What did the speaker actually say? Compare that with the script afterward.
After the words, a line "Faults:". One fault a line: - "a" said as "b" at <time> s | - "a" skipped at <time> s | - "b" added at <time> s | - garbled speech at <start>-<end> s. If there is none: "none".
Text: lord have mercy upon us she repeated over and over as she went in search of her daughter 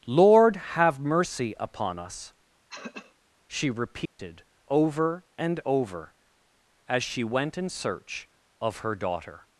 lord have mercy upon us she repeated over and over as she went in search of her daughter
Faults:
none